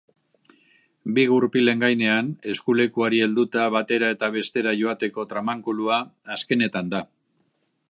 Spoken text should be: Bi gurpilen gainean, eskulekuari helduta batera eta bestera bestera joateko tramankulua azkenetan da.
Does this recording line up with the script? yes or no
no